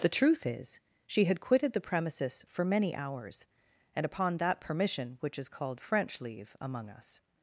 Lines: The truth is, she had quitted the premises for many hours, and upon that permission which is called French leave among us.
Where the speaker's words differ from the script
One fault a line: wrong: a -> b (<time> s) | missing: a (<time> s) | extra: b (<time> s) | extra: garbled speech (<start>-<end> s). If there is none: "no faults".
no faults